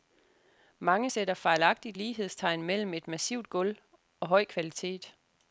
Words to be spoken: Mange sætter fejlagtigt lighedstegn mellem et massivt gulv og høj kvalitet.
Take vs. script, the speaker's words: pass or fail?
pass